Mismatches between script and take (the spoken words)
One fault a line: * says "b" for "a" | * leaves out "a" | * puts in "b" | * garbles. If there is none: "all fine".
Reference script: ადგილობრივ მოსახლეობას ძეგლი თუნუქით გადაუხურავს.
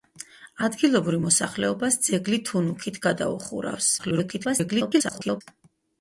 * garbles